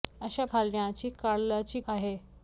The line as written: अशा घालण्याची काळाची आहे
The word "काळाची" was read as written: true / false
true